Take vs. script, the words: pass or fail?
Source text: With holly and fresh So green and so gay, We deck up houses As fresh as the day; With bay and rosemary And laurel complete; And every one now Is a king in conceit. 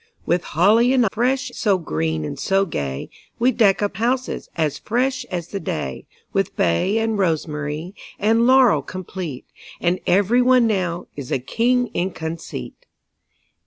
pass